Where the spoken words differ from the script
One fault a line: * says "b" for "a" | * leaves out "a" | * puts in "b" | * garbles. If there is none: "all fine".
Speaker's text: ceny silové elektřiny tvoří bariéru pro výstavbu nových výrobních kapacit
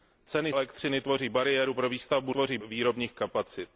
* leaves out "silové"
* says "tvoří" for "nových"